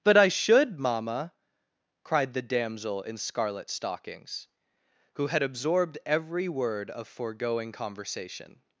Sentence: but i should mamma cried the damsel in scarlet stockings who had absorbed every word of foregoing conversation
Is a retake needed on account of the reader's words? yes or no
no